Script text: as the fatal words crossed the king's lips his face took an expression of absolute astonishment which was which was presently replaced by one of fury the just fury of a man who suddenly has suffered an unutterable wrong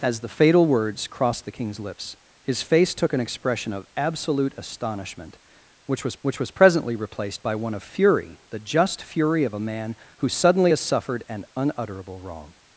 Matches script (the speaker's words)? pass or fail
pass